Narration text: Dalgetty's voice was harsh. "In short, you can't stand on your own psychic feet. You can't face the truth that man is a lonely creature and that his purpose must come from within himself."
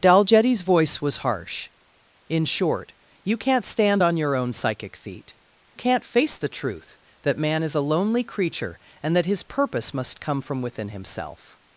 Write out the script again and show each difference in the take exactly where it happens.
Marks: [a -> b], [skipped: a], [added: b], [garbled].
Dalgetty's voice was harsh. "In short, you can't stand on your own psychic feet. [skipped: You] can't face the truth that man is a lonely creature and that his purpose must come from within himself."